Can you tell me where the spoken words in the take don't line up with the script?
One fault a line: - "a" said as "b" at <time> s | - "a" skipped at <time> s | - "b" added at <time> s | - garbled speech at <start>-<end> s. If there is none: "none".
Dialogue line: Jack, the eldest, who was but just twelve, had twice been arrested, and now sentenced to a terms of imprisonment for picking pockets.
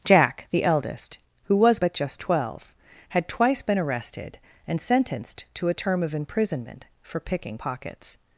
- "now" skipped at 4.8 s
- "terms" said as "term" at 5.7 s